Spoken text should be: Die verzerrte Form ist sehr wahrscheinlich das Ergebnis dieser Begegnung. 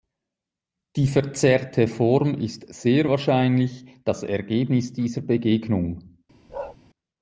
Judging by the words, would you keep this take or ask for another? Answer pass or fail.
pass